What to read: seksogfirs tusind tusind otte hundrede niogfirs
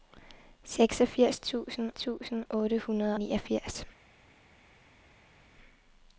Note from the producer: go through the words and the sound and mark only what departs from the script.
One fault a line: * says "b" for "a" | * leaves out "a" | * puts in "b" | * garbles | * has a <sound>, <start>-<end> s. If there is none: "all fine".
all fine